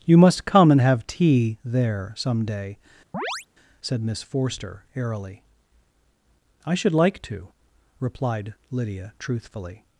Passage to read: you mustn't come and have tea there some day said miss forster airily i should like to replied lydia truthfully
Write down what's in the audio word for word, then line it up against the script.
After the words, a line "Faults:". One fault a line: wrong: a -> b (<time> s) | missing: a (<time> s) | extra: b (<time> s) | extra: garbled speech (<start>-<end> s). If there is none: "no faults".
you must come and have tea there some day said miss forster airily i should like to replied lydia truthfully
Faults:
wrong: mustn't -> must (0.2 s)